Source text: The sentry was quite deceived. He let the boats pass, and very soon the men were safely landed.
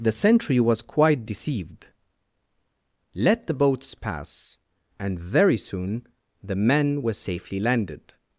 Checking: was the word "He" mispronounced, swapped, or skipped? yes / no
yes